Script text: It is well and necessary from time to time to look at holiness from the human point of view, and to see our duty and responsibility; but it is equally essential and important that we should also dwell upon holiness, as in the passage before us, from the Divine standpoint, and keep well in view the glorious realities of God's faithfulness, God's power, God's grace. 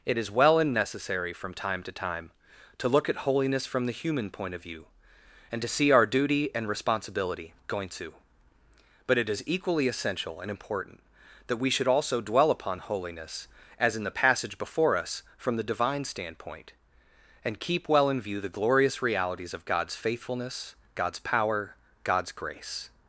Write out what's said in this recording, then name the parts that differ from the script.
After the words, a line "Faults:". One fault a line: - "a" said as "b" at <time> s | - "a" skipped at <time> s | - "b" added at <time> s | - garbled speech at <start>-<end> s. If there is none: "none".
It is well and necessary from time to time to look at holiness from the human point of view, and to see our duty and responsibility; going to but it is equally essential and important that we should also dwell upon holiness, as in the passage before us, from the Divine standpoint, and keep well in view the glorious realities of God's faithfulness, God's power, God's grace.
Faults:
- "going to" added at 7.7 s